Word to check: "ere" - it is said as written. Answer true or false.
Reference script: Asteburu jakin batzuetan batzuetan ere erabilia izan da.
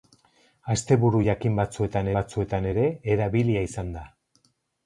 true